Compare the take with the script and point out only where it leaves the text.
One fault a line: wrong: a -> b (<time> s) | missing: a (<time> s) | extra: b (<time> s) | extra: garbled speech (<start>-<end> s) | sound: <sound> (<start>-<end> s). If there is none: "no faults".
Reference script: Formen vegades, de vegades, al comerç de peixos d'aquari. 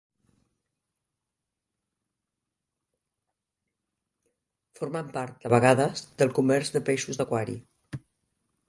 wrong: vegades -> part (5.2 s)
wrong: al -> del (6.2 s)